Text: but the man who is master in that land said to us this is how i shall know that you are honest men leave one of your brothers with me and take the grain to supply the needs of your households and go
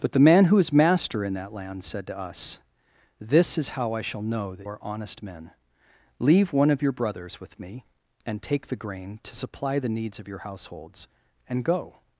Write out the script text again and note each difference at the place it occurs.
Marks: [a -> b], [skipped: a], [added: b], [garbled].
but the man who is master in that land said to us this is how i shall know that [skipped: you] are honest men leave one of your brothers with me and take the grain to supply the needs of your households and go